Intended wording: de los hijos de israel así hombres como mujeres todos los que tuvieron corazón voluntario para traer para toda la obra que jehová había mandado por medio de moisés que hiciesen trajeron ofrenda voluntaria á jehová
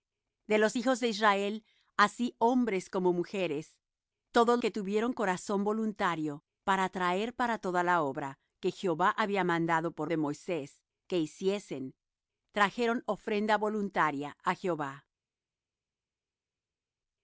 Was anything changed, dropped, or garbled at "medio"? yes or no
yes